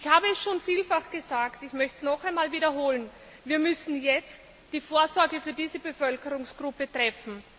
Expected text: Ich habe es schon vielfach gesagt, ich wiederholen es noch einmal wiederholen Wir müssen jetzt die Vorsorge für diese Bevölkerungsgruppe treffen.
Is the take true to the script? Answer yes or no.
no